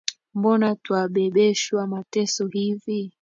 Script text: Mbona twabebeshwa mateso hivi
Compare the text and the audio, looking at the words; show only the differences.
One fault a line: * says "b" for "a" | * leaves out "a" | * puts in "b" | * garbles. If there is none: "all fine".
all fine